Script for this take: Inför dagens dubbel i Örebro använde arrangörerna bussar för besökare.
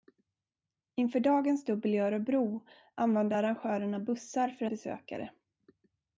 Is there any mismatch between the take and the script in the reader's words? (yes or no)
no